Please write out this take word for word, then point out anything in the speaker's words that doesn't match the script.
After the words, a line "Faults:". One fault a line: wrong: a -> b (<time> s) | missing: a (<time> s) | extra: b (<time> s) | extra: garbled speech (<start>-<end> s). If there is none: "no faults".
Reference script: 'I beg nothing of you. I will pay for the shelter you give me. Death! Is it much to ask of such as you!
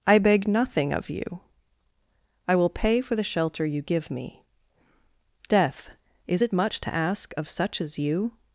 'I beg nothing of you. I will pay for the shelter you give me. Death! Is it much to ask of such as you!
Faults:
no faults